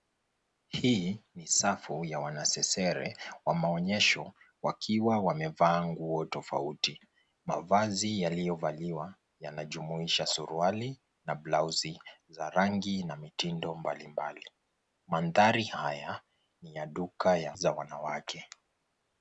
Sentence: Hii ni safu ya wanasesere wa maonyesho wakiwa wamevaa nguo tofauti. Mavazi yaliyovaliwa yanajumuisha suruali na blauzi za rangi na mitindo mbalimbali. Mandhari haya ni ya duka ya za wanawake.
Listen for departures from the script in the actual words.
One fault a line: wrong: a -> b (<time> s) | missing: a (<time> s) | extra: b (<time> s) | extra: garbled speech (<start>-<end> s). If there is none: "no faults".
no faults